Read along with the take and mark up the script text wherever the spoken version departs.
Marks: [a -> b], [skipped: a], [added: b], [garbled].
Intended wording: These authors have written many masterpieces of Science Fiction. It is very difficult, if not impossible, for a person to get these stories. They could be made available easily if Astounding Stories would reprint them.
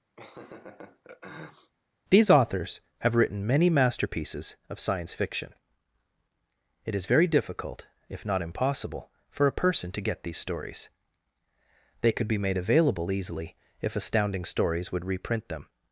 These authors have written many masterpieces of Science Fiction. It is very difficult, if not impossible, for a person to get these stories. They could be made available easily if Astounding Stories would reprint them.